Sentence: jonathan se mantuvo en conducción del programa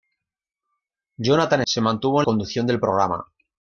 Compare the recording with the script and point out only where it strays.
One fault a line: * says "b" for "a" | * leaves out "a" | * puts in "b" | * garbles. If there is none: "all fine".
all fine